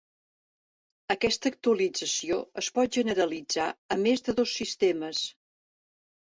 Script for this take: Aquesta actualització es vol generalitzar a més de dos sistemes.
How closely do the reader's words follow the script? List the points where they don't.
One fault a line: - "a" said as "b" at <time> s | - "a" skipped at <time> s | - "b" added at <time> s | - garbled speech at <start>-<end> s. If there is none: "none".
- "vol" said as "pot" at 2.8 s